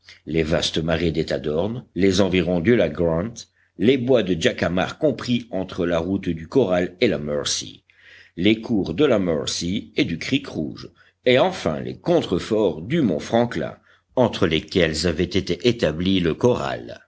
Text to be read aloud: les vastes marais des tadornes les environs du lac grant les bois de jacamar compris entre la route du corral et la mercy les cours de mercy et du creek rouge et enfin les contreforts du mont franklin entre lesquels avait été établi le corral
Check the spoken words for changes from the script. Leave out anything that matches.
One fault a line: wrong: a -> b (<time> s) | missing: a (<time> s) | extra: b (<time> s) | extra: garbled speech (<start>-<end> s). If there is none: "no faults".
extra: la (9.1 s)